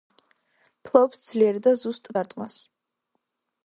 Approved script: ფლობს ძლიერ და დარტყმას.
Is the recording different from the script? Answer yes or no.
yes